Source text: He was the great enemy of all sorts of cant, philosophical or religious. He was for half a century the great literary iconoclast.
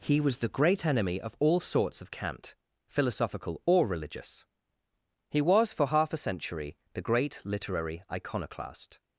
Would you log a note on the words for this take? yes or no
no